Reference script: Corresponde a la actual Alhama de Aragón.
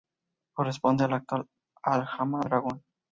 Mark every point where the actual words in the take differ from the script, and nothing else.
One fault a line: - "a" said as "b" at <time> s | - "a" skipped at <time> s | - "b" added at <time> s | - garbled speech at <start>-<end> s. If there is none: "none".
- "de" skipped at 2.4 s